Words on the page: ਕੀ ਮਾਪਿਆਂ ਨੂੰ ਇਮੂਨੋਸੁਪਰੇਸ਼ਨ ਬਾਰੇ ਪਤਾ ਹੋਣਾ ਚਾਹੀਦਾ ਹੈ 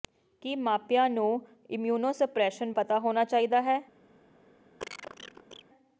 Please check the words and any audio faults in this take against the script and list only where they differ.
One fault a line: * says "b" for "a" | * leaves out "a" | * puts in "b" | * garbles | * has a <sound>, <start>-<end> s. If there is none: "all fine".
* leaves out "ਬਾਰੇ"
* has a cough, 4.8-5.6 s